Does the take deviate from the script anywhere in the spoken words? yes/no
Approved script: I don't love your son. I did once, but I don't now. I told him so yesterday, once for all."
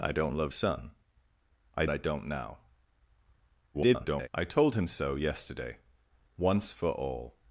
yes